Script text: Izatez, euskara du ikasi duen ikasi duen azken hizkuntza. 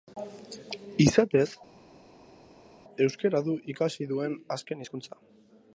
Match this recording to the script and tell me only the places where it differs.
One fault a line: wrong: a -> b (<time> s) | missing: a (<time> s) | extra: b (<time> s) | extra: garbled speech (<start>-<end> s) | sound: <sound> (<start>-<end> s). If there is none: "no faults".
missing: ikasi duen (4.3 s)